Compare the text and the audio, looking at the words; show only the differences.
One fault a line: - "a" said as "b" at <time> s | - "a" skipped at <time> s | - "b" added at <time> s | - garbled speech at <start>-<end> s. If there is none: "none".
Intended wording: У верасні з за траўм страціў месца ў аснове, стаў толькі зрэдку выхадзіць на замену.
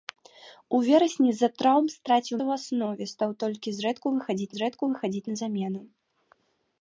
- "месца" skipped at 2.4 s
- "зрэдку выхадзіць" added at 4.6 s